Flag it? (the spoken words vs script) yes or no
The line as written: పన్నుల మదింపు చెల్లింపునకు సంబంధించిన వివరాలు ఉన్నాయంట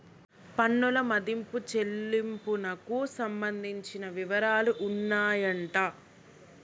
no